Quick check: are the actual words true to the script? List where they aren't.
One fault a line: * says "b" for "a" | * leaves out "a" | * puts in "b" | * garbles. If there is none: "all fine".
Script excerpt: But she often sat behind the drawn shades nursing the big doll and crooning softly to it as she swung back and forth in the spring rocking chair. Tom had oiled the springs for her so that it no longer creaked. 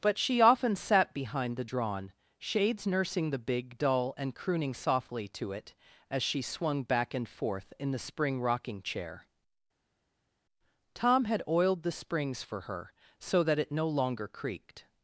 all fine